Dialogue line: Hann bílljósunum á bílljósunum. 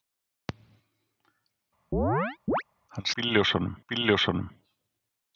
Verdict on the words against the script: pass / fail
pass